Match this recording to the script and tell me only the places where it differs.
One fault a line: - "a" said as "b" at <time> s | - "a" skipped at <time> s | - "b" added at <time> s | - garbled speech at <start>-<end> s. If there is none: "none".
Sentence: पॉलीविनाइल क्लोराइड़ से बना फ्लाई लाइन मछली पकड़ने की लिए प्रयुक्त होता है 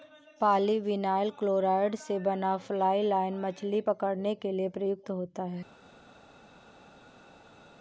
- "की" said as "के" at 4.4 s